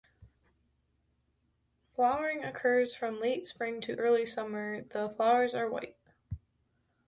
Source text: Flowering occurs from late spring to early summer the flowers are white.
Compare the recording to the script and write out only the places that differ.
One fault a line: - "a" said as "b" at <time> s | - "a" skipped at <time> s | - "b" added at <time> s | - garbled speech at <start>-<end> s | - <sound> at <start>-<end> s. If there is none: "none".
none